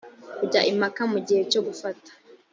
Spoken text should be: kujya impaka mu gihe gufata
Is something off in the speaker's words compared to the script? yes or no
yes